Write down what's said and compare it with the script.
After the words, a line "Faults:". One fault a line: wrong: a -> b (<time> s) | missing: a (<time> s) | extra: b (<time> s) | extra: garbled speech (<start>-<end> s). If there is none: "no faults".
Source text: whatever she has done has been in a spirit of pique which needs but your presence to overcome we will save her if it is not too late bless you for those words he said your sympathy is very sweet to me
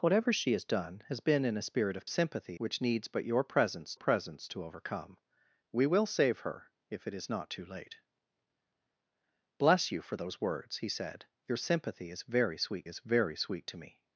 whatever she has done has been in a spirit of sympathy which needs but your presence presence to overcome we will save her if it is not too late bless you for those words he said your sympathy is very sweet is very sweet to me
Faults:
wrong: pique -> sympathy (2.0 s)
extra: presence (3.9 s)
extra: is very sweet (12.9 s)